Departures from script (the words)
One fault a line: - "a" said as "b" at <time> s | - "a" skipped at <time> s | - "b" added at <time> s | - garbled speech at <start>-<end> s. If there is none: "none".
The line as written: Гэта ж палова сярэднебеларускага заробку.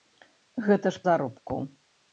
- "палова сярэднебеларускага" skipped at 1.0 s